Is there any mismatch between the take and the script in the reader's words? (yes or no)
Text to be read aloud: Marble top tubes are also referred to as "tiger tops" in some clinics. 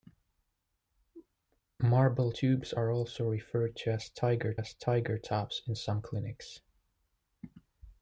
yes